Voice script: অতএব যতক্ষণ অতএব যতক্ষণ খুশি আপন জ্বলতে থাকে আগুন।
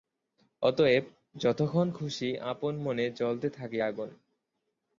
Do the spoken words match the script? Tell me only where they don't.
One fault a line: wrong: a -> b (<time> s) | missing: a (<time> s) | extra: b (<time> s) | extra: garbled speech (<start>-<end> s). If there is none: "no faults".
missing: অতএব যতক্ষণ (1.9 s)
extra: মনে (2.8 s)